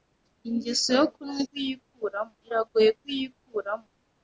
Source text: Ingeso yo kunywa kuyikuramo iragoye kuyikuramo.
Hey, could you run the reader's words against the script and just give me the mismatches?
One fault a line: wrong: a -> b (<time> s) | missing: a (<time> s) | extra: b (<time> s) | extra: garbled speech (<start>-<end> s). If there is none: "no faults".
no faults